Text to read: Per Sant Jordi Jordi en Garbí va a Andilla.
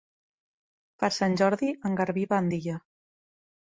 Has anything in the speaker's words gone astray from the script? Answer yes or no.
yes